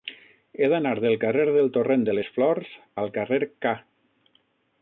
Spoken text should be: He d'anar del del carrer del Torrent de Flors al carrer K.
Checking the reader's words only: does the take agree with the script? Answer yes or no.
no